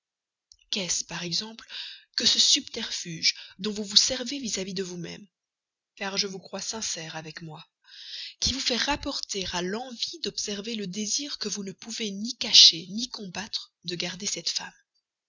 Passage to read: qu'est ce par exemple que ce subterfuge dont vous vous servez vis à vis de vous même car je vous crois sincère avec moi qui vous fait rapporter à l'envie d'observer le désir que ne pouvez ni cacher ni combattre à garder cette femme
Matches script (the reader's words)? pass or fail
fail